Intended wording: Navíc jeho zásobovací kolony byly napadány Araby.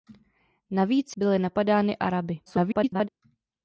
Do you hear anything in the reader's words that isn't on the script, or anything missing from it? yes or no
yes